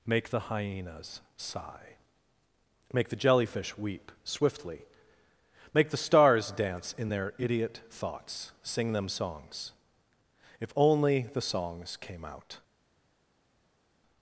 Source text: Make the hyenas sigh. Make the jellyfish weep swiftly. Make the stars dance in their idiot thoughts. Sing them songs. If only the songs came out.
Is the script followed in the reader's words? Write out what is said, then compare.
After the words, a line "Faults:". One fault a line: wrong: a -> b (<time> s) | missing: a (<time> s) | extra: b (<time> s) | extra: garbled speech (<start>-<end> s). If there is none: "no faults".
Make the hyenas sigh. Make the jellyfish weep swiftly. Make the stars dance in their idiot thoughts. Sing them songs. If only the songs came out.
Faults:
no faults